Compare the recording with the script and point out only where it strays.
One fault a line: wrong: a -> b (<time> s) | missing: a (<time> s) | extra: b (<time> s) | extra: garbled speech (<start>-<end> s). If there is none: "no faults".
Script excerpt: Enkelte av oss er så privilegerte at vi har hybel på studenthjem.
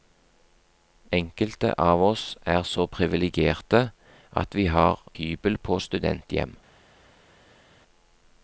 no faults